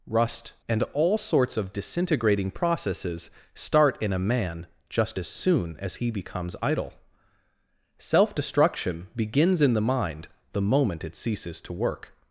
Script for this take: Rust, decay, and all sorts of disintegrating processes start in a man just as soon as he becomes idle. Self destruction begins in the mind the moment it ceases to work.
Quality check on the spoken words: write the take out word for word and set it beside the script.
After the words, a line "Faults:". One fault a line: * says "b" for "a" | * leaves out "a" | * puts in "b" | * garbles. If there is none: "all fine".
Rust, and all sorts of disintegrating processes start in a man just as soon as he becomes idle. Self destruction begins in the mind the moment it ceases to work.
Faults:
* leaves out "decay"